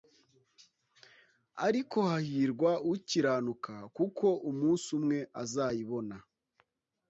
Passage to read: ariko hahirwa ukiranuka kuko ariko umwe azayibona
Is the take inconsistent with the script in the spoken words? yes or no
yes